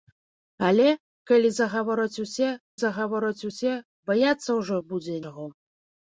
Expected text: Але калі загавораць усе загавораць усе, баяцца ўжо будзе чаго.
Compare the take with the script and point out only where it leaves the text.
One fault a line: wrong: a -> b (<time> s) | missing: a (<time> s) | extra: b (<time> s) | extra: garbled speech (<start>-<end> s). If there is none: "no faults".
no faults